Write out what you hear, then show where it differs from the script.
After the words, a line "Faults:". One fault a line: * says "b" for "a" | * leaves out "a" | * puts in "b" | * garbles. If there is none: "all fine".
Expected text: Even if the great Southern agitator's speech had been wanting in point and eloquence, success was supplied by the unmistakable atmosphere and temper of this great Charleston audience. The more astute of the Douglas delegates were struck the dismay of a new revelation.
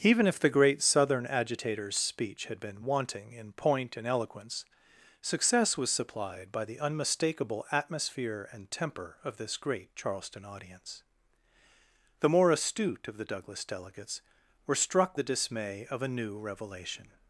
Even if the great Southern agitator's speech had been wanting in point and eloquence, success was supplied by the unmistakable atmosphere and temper of this great Charleston audience. The more astute of the Douglas delegates were struck the dismay of a new revelation.
Faults:
all fine